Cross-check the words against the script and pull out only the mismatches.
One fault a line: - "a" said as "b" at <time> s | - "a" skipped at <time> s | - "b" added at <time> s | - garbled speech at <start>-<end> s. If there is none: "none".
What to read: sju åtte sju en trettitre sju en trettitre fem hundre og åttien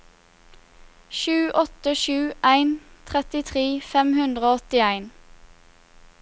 - "sju en trettitre" skipped at 3.6 s